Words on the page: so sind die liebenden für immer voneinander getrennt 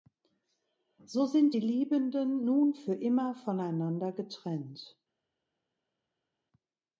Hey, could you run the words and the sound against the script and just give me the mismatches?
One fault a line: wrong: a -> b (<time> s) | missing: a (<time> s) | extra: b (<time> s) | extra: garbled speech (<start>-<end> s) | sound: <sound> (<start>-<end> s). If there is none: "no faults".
extra: nun (2.4 s)